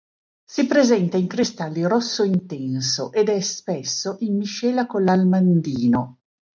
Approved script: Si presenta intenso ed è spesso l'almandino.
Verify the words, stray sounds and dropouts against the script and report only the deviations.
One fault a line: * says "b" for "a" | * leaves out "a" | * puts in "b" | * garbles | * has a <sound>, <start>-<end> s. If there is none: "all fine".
* puts in "in cristalli rosso"
* puts in "in miscela con"